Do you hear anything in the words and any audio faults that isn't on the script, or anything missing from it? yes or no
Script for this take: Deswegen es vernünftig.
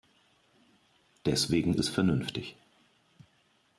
no